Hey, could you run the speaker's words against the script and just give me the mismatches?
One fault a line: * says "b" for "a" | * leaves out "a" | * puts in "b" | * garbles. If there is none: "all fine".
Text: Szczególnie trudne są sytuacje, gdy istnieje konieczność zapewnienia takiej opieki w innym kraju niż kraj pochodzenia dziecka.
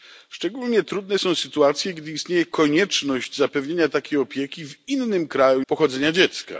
* leaves out "niż kraj"